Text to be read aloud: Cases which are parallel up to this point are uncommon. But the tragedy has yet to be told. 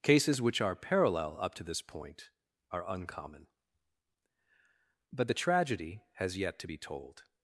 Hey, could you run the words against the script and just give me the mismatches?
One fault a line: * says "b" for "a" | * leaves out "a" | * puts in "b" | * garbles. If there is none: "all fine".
all fine